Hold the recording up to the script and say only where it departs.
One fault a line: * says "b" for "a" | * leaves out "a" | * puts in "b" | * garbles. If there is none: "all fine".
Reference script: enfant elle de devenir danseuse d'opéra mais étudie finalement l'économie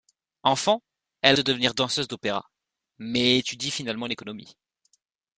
all fine